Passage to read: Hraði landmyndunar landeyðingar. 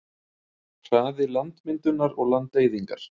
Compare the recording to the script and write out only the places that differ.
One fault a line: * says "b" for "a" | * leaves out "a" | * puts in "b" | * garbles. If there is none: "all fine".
* puts in "og"